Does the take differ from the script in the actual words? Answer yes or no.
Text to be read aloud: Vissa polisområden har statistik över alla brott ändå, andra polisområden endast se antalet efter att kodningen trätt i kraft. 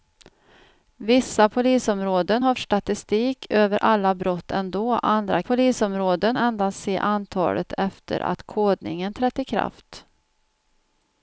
no